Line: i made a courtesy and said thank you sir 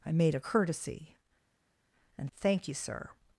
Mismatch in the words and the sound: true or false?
true